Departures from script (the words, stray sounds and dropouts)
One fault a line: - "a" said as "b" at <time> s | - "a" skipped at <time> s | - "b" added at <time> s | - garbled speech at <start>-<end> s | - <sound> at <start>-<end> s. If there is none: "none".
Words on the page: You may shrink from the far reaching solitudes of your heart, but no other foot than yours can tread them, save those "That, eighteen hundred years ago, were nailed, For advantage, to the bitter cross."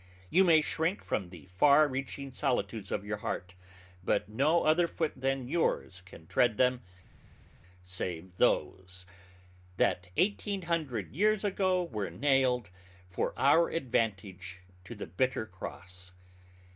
- "our" added at 13.4 s